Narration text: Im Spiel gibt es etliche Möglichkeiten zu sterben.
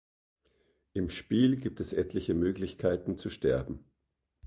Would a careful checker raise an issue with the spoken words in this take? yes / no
no